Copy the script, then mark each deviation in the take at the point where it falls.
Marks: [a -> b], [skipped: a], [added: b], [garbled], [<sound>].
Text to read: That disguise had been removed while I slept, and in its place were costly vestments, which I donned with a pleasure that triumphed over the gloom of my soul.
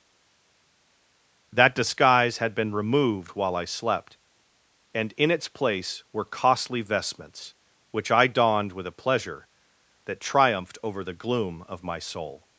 That disguise had been removed while I slept, and in its place were costly vestments, which I donned with a pleasure that triumphed over the gloom of my soul.